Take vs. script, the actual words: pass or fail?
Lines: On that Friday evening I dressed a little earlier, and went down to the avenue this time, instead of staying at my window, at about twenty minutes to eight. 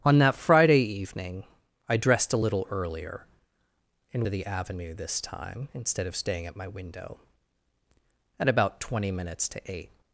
fail